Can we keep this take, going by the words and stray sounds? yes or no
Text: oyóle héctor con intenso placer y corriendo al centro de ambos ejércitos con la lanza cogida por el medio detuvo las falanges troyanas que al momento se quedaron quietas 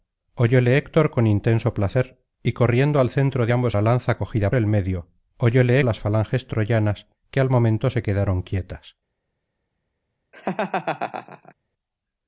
no